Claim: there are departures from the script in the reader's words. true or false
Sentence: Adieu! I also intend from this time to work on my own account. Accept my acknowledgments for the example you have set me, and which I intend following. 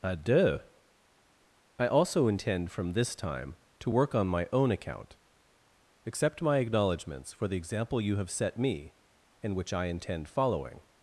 false